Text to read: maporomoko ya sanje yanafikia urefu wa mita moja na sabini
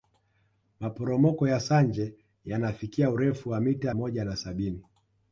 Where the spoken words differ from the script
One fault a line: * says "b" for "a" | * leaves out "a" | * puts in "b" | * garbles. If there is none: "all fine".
all fine